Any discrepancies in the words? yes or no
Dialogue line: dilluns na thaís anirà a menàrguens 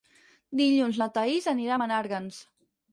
no